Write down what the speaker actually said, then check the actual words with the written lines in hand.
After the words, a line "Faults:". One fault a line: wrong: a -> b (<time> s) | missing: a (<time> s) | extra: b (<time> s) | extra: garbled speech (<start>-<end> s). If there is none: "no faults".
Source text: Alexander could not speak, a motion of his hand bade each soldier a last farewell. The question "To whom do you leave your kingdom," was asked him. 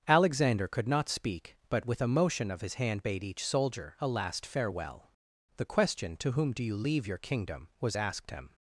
Alexander could not speak, but with a motion of his hand bade each soldier a last farewell. The question "To whom do you leave your kingdom," was asked him.
Faults:
extra: but with (1.7 s)